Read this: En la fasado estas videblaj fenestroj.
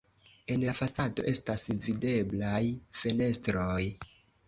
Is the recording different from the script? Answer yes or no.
no